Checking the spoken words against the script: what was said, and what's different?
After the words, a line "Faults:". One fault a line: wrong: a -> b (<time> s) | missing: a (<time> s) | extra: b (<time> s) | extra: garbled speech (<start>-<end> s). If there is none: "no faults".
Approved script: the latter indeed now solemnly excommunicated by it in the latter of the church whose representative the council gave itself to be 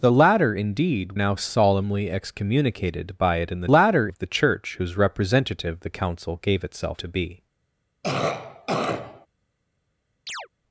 the latter indeed now solemnly excommunicated by it in the latter of the church whose representative the council gave itself to be
Faults:
no faults